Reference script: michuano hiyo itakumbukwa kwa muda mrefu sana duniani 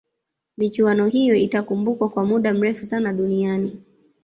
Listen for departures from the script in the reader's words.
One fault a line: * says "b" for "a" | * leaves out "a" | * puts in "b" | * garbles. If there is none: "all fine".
all fine